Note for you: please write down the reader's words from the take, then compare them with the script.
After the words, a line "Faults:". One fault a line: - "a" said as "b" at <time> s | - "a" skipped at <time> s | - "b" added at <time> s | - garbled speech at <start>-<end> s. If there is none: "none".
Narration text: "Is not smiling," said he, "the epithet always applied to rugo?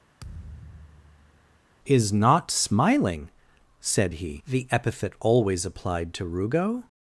"Is not smiling," said he, "the epithet always applied to rugo?
Faults:
none